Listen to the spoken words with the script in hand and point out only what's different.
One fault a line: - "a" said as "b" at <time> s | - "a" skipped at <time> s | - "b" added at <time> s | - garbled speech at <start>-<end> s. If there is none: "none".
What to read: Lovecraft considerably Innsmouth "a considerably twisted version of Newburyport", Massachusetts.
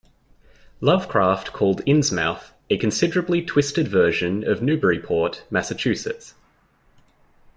- "considerably" said as "called" at 1.5 s